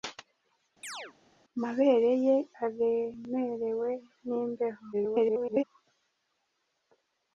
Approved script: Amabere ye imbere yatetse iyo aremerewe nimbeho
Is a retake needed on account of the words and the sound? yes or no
yes